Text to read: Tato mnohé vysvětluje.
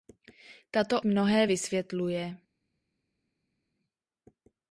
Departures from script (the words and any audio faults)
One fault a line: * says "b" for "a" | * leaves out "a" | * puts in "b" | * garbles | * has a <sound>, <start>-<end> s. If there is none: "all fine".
all fine